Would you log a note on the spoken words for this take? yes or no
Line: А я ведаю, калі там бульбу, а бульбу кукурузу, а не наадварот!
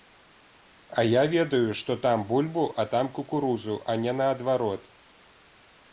yes